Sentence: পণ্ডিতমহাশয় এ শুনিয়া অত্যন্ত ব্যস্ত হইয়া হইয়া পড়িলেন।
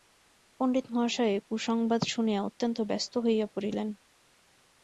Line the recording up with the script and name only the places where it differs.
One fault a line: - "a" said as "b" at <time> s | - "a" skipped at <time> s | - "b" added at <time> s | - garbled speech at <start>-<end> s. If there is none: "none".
- "কুসংবাদ" added at 1.5 s
- "হইয়া" skipped at 3.5 s